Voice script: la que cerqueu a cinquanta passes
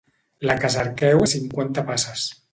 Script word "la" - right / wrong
right